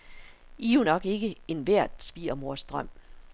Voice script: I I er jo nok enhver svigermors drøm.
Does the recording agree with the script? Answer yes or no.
no